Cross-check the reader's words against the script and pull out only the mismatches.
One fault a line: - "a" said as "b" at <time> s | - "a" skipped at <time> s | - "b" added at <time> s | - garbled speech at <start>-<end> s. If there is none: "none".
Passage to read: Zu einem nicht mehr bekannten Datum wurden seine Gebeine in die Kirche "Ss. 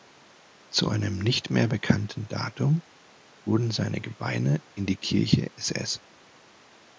none